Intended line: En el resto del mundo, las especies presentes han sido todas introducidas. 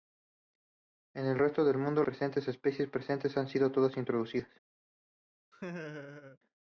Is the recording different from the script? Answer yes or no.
yes